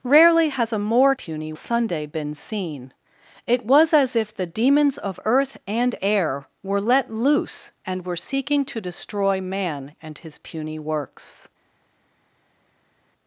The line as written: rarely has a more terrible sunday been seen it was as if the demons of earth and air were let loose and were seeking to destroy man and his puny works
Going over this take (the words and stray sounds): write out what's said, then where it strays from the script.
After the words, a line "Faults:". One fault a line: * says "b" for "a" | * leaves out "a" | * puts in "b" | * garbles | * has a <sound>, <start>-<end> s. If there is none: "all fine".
rarely has a more puny sunday been seen it was as if the demons of earth and air were let loose and were seeking to destroy man and his puny works
Faults:
* says "puny" for "terrible"